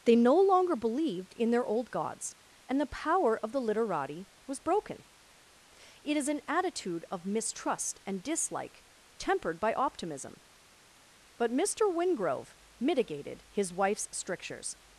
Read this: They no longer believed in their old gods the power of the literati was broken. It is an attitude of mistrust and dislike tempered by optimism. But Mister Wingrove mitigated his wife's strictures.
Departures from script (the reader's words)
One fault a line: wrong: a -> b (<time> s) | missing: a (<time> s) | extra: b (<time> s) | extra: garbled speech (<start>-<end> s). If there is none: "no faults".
extra: and (2.7 s)